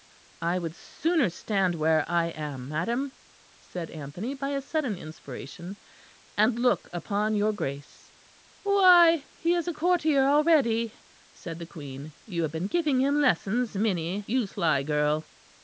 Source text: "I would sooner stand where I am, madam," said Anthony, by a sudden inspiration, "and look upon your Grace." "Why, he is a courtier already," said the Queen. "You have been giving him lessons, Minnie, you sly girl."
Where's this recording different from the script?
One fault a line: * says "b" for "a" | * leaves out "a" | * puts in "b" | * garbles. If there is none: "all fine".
all fine